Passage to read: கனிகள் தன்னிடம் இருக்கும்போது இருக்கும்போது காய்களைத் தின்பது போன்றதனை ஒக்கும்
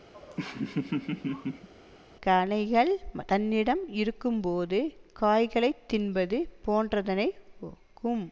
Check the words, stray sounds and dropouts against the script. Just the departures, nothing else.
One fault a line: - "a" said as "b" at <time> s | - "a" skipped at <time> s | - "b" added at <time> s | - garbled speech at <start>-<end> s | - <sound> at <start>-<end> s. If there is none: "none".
- laugh at 0.1-1.7 s
- "இருக்கும்போது" skipped at 4.8 s